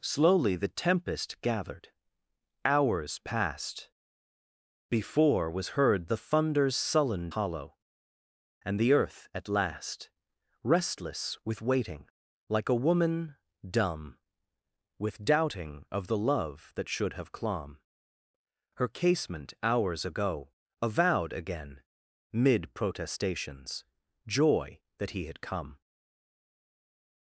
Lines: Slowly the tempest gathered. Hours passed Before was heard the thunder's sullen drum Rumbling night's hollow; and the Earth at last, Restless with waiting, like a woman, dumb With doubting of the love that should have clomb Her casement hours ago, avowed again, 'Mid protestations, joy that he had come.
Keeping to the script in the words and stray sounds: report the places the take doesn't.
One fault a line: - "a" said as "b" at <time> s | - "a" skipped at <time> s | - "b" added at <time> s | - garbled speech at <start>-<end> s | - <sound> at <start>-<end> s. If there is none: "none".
- "drum Rumbling night's" skipped at 7.3 s